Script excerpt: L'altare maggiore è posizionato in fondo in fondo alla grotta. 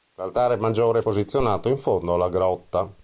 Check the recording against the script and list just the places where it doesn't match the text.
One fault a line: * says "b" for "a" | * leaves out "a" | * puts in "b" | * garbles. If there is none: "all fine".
* leaves out "in fondo"